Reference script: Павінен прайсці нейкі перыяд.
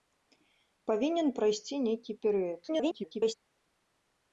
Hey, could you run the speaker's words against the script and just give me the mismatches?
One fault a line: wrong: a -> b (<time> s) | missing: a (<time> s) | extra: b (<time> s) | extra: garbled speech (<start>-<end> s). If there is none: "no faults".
extra: garbled speech (2.7-3.4 s)